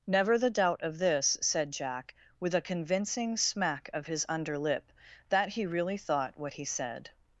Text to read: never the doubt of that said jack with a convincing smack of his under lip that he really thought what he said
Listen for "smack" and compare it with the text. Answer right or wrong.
right